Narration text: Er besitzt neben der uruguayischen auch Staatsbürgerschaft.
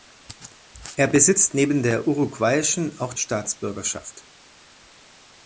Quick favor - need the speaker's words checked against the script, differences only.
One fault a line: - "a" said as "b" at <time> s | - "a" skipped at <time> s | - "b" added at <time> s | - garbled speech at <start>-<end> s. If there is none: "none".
none